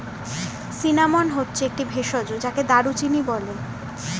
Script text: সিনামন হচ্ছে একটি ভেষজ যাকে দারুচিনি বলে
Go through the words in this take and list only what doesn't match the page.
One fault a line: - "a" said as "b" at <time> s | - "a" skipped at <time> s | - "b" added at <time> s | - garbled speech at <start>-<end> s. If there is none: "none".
none